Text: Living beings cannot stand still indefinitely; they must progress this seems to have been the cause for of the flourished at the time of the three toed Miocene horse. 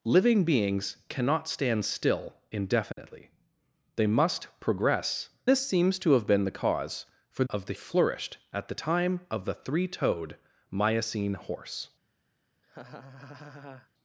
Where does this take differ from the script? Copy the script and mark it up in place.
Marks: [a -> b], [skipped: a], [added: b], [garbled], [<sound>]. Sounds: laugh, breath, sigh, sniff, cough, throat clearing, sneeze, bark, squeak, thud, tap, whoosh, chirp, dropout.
Living beings cannot stand still indefinitely; [dropout] they must progress this seems to have been the cause for of the flourished at the time of the three toed Miocene horse. [laugh]